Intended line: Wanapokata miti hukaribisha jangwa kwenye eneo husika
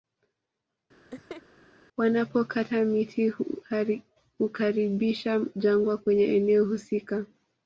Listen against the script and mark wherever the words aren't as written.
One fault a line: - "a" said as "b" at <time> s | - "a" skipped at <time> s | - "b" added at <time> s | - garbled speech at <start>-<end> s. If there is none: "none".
none